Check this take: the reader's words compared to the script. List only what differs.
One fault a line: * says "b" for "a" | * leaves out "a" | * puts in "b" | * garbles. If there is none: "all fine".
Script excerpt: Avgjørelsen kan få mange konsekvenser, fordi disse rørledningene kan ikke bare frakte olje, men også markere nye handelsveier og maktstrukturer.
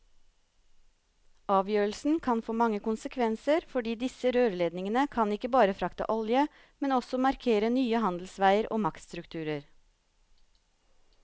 all fine